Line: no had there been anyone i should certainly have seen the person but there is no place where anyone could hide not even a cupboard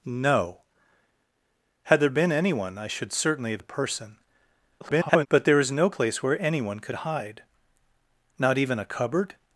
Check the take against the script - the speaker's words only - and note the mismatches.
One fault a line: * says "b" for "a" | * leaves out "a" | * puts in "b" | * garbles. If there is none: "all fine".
* leaves out "seen"
* garbles